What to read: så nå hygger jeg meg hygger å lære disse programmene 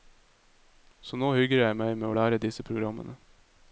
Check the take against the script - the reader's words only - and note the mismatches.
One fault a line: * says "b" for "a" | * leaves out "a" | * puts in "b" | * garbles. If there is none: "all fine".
* says "med" for "hygger"